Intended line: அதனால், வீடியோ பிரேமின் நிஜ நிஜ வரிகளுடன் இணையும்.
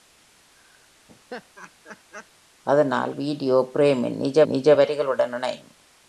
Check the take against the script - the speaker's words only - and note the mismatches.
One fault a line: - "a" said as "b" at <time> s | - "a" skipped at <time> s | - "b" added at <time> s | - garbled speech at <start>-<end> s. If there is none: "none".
none